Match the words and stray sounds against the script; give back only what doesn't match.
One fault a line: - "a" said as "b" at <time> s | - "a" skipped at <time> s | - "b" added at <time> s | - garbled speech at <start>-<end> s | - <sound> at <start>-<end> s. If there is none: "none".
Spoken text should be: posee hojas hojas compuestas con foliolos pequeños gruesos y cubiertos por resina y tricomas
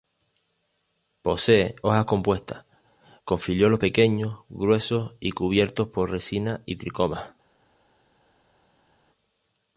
- "hojas" skipped at 2.0 s